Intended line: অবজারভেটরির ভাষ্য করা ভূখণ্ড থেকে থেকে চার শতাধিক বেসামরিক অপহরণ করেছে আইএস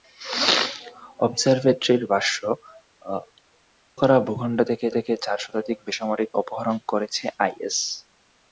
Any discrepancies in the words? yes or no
no